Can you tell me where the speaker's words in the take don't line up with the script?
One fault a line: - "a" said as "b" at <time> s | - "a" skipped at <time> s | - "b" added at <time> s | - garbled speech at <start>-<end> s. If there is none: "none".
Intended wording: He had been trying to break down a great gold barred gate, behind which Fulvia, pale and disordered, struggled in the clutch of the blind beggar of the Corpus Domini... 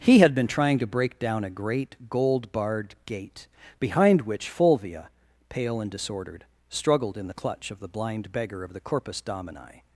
none